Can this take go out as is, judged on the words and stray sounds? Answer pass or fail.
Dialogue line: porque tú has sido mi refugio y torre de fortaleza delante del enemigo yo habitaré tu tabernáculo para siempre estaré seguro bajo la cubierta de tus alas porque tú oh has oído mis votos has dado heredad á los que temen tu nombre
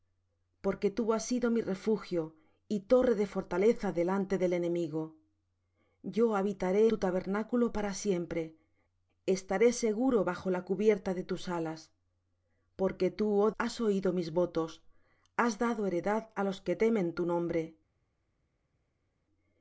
pass